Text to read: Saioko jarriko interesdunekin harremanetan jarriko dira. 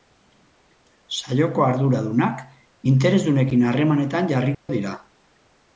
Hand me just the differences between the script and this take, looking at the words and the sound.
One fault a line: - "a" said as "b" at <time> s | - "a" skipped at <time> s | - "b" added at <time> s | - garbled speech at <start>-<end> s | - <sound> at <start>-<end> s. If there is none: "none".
- "jarriko" said as "arduradunak" at 1.7 s
- dropout at 4.5-4.7 s